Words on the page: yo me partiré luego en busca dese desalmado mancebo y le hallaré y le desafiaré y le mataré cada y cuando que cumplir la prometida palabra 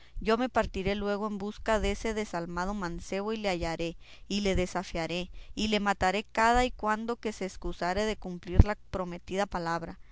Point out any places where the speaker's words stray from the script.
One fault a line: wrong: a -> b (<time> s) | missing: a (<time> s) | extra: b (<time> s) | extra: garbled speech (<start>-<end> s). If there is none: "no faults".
extra: se escusare de (7.3 s)